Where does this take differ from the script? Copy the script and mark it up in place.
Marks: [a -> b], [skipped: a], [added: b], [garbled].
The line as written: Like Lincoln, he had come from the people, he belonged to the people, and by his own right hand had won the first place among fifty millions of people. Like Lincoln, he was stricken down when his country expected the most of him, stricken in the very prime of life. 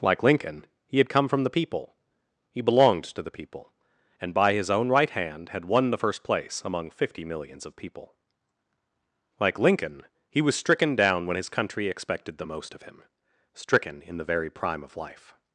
Like Lincoln, he had come from the people, he belonged to the people, and by his own right hand had won the first place among fifty millions of people. Like Lincoln, he was stricken down when his country expected the most of him, stricken in the very prime of life.